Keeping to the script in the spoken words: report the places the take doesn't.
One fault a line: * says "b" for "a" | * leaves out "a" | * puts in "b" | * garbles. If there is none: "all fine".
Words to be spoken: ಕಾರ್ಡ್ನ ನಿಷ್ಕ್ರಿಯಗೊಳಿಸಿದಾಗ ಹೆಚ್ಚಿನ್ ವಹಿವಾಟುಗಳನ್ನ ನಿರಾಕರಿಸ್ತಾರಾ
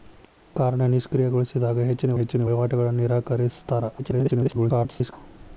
* puts in "ಹೆಚ್ಚಿನ್"
* garbles